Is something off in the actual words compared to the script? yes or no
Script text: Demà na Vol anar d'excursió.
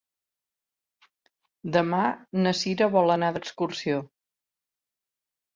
yes